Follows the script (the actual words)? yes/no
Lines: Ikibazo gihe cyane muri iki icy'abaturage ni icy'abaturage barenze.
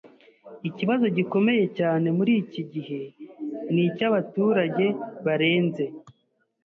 no